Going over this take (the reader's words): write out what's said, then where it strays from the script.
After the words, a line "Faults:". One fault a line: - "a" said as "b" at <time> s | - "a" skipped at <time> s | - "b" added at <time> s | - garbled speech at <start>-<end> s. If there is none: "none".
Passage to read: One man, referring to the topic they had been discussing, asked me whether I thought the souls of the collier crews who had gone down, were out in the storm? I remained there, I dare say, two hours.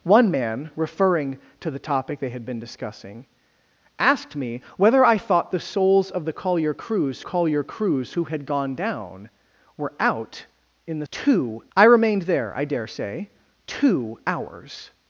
One man, referring to the topic they had been discussing, asked me whether I thought the souls of the collier crews collier crews who had gone down, were out in the two? I remained there, I dare say, two hours.
Faults:
- "collier crews" added at 7.2 s
- "storm" said as "two" at 11.1 s